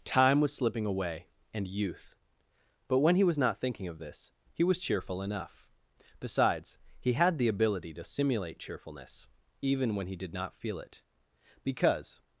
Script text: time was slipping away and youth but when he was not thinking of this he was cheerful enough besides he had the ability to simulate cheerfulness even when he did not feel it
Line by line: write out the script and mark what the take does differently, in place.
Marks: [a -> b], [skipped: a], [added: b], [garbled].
time was slipping away and youth but when he was not thinking of this he was cheerful enough besides he had the ability to simulate cheerfulness even when he did not feel it [added: because]